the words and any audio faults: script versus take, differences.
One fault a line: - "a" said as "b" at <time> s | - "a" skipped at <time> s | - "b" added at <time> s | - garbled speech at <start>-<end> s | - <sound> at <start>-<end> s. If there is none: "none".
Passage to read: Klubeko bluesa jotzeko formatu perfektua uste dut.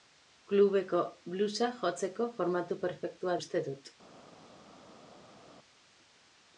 none